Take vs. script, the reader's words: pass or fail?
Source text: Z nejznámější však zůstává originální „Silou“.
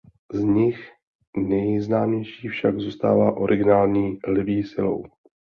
fail